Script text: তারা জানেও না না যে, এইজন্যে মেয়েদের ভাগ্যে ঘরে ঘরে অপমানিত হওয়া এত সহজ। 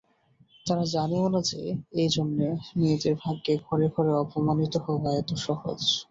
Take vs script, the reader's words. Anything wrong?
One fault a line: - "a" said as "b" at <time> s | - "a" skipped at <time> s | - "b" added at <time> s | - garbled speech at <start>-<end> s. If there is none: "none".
- "না" skipped at 1.4 s